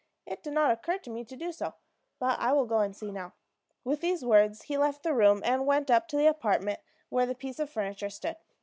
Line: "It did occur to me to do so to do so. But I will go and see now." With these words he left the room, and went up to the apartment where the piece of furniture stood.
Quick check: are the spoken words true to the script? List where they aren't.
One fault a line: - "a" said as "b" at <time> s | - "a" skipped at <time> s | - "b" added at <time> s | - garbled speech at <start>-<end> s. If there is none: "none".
- "not" added at 0.5 s
- "to do so" skipped at 1.8 s